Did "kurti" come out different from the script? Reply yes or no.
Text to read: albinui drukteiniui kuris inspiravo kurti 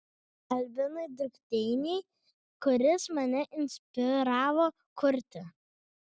no